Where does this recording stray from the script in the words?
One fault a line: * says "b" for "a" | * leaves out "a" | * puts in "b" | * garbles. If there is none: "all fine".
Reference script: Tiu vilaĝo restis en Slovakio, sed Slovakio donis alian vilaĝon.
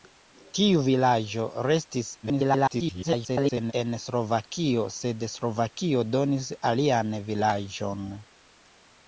* garbles